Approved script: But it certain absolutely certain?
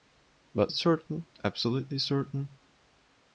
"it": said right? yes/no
yes